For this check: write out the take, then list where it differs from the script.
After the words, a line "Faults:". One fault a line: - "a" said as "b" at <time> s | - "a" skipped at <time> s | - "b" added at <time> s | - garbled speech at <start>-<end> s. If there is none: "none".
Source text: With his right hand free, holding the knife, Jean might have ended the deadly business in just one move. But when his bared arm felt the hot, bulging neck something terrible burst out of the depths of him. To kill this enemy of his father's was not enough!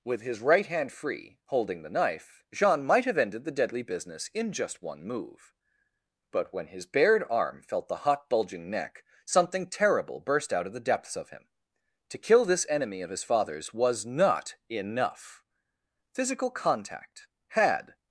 With his right hand free, holding the knife, Jean might have ended the deadly business in just one move. But when his bared arm felt the hot, bulging neck something terrible burst out of the depths of him. To kill this enemy of his father's was not enough! Physical contact had
Faults:
- "Physical contact had" added at 16.1 s